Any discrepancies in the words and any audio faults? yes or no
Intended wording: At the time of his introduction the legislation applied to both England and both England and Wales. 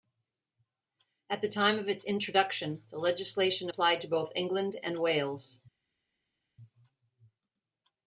yes